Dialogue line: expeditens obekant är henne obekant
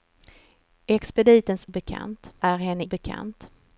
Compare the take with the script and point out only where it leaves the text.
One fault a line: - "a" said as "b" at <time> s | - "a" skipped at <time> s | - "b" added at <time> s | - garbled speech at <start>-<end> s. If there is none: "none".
none